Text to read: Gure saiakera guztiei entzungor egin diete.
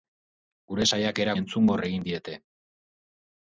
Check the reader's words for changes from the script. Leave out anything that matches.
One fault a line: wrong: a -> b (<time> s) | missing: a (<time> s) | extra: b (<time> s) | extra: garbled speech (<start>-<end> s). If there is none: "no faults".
missing: guztiei (1.3 s)